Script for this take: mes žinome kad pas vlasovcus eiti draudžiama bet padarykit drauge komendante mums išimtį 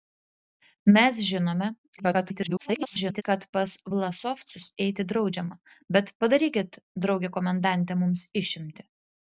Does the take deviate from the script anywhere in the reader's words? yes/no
yes